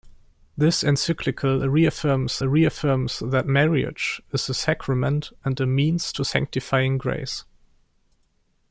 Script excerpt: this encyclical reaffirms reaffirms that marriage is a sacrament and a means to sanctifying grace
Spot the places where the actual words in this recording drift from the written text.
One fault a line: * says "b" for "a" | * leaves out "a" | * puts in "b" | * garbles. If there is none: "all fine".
all fine